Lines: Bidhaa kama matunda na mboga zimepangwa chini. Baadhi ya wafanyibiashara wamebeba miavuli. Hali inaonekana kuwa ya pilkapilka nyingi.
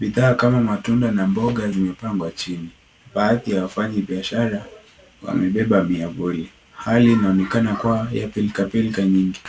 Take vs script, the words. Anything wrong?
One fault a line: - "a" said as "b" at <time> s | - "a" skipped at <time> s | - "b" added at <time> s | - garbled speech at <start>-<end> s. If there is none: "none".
none